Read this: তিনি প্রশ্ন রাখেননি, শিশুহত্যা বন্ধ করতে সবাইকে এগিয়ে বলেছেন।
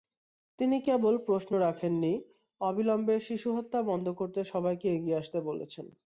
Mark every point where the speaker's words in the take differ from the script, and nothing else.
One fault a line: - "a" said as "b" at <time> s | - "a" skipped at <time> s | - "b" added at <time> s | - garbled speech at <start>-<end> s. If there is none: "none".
- "কেবল" added at 0.8 s
- "অবিলম্বে" added at 2.6 s
- "আসতে" added at 5.2 s